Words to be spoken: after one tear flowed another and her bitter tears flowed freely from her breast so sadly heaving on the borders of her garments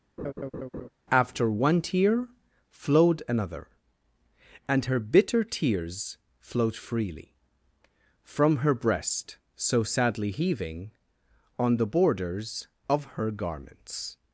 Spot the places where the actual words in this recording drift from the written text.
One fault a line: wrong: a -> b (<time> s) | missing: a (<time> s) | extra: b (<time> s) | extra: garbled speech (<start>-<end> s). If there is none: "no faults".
no faults